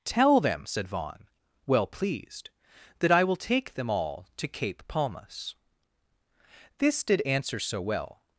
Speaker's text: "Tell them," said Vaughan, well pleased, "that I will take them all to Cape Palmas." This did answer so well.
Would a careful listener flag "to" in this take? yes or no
no